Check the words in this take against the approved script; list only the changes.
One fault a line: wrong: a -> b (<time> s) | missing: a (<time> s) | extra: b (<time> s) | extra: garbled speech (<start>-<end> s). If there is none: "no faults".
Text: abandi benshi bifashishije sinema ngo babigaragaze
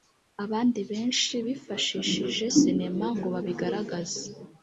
no faults